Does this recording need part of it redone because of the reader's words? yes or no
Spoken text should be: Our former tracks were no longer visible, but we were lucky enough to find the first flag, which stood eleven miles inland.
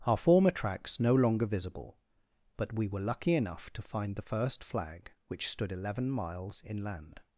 yes